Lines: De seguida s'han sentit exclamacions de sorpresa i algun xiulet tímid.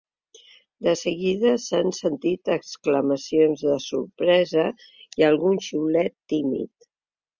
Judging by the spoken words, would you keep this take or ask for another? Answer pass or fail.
pass